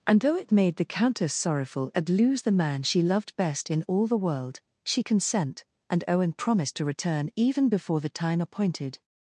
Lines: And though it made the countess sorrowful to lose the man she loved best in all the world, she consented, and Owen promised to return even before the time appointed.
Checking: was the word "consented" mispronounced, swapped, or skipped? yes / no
yes